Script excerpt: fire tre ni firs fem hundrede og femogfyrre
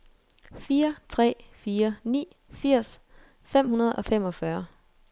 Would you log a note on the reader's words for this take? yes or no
yes